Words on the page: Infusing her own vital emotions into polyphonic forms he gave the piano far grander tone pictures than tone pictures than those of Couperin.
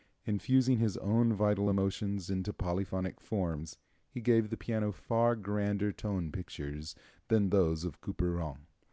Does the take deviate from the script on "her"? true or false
true